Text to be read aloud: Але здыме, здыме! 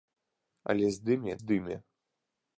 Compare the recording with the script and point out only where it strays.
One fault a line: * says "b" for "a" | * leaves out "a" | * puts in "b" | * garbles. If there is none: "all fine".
all fine